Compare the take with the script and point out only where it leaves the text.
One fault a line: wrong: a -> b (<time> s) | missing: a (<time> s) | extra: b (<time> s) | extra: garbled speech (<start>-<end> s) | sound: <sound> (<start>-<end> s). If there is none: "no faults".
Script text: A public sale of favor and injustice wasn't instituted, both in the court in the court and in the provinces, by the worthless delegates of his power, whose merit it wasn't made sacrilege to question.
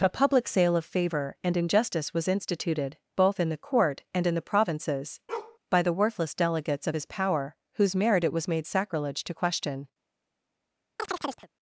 wrong: wasn't -> was (2.1 s)
missing: in the court (4.0 s)
sound: bark (5.3-5.6 s)
wrong: wasn't -> was (8.3 s)
sound: chirp (11.0-11.5 s)